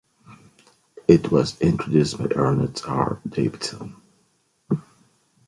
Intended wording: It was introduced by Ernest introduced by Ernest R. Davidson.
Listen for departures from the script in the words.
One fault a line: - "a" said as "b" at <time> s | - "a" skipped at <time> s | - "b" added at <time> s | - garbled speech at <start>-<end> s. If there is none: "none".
- "introduced by Ernest" skipped at 2.8 s